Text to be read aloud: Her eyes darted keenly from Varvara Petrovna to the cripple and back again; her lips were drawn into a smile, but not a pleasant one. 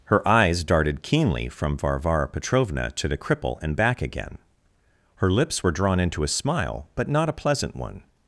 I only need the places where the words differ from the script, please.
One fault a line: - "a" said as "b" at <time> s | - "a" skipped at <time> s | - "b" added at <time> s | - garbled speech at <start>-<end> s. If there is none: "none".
none